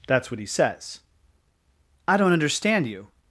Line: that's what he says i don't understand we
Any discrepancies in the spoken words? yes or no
yes